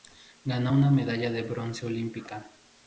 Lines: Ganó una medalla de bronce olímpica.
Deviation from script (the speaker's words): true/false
false